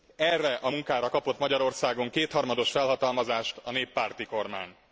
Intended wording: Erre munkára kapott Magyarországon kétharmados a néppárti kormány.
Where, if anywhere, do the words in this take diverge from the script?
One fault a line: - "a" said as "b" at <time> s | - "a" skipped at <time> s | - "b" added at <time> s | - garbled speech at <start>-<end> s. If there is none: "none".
- "a" added at 0.6 s
- "felhatalmazást" added at 2.7 s